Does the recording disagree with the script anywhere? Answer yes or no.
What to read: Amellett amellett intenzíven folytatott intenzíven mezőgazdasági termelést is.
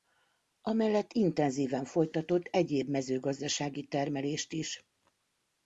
yes